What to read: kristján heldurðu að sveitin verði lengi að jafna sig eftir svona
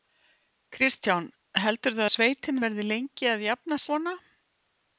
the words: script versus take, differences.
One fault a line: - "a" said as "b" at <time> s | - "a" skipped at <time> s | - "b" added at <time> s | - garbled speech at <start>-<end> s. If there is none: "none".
- "að" skipped at 2.0 s
- "sig eftir" skipped at 3.8 s